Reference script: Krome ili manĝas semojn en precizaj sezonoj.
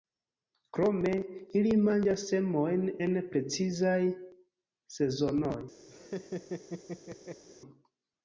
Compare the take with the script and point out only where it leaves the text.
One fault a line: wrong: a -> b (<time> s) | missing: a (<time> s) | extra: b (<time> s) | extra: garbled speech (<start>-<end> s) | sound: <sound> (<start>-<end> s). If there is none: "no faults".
sound: laugh (5.9-7.4 s)